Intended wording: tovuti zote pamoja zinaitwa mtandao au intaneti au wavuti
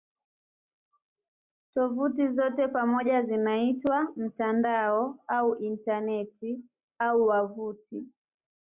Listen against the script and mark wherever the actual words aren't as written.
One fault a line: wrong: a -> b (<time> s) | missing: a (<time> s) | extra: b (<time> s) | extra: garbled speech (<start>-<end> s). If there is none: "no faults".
no faults